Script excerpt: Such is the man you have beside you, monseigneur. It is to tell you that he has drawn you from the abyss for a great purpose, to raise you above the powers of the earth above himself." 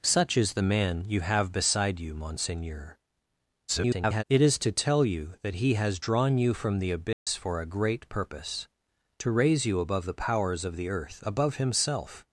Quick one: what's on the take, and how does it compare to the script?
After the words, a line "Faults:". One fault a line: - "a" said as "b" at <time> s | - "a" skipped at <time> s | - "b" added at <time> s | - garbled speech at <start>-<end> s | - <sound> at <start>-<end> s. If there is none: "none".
Such is the man you have beside you, monseigneur. [garbled] It is to tell you that he has drawn you from the abyss for a great purpose, to raise you above the powers of the earth above himself."
Faults:
- garbled speech at 3.7-4.2 s
- dropout at 7.1-7.3 s